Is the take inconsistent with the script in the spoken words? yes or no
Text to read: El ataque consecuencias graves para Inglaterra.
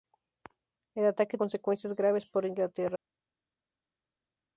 no